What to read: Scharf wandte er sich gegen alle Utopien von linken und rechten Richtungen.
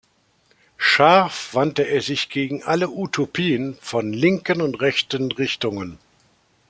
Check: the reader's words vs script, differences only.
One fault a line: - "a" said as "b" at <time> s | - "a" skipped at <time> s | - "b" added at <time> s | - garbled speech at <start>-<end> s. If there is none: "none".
none